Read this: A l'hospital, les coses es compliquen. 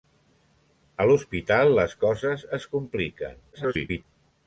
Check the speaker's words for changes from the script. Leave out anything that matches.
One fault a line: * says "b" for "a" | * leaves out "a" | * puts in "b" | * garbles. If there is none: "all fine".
* garbles